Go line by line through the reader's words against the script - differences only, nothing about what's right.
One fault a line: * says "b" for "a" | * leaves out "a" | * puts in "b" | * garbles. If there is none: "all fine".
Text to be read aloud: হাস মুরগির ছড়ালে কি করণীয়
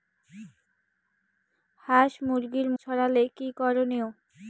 all fine